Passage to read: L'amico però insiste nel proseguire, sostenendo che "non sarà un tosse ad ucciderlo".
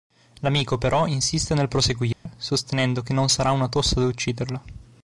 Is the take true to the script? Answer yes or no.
no